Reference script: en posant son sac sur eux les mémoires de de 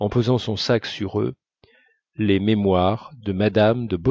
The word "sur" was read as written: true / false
true